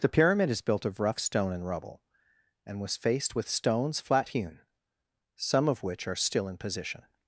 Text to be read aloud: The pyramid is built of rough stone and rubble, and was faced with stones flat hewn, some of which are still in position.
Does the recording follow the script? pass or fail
pass